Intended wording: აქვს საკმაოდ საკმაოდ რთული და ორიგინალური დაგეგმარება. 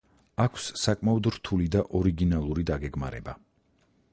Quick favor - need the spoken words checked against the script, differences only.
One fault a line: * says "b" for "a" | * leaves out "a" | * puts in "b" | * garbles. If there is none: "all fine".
* leaves out "საკმაოდ"